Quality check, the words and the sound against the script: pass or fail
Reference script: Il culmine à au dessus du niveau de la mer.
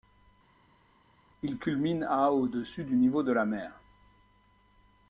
pass